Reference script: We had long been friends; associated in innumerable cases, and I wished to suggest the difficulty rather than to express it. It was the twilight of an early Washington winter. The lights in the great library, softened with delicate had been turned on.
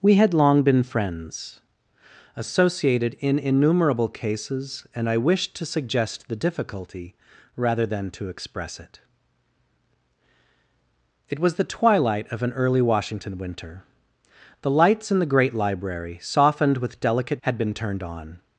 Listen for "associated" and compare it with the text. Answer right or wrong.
right